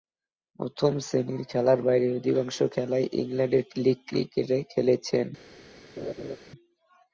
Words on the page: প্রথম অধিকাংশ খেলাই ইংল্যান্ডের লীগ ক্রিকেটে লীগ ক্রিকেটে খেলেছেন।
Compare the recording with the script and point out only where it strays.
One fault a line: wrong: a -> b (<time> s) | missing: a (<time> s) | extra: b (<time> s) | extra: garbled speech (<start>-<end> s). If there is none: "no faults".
extra: শ্রেণীর খেলার বাইরে (1.0 s)
missing: লীগ ক্রিকেটে (4.6 s)